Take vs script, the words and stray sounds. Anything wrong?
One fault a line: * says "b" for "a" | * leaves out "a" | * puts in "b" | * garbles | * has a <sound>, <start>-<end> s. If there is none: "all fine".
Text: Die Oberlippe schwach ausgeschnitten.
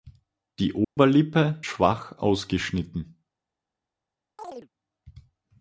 * has a dropout, 0.8-1.0 s
* has a chirp, 4.4-4.7 s